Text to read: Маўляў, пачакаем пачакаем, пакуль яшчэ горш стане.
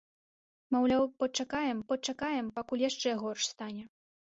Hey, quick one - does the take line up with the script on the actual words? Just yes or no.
yes